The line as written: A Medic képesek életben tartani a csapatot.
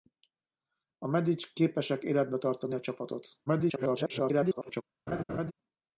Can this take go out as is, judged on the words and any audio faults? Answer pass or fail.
fail